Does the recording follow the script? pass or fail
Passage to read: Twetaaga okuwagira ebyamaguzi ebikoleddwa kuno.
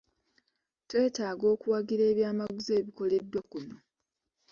pass